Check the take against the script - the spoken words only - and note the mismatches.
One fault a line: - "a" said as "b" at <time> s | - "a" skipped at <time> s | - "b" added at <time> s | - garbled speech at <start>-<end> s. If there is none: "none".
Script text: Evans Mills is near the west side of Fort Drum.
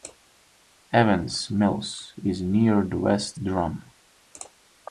- "side of Fort" skipped at 3.4 s